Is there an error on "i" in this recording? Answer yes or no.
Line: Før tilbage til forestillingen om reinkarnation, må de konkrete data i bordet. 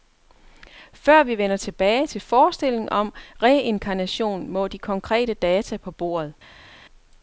yes